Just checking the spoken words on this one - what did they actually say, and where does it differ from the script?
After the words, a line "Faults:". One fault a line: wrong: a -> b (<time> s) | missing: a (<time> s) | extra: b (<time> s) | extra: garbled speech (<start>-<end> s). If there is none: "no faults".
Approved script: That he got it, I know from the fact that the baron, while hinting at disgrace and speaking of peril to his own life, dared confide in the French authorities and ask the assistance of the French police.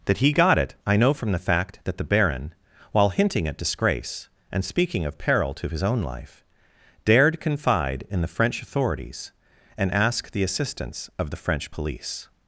That he got it, I know from the fact that the baron, while hinting at disgrace and speaking of peril to his own life, dared confide in the French authorities and ask the assistance of the French police.
Faults:
no faults